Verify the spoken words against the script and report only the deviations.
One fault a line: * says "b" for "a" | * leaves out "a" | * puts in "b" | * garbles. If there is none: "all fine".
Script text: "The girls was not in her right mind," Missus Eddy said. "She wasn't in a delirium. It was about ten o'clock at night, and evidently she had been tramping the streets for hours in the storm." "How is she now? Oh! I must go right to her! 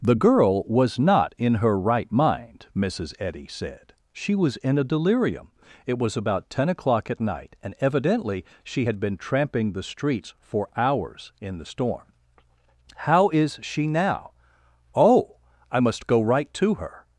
* says "girl" for "girls"
* says "was" for "wasn't"